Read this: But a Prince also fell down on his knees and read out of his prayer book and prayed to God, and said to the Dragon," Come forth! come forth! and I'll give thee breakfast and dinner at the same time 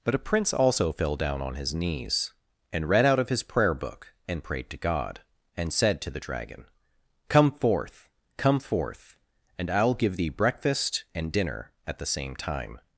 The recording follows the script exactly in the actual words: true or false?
true